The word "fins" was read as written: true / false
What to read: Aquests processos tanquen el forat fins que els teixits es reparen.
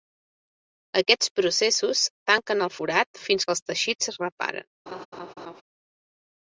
true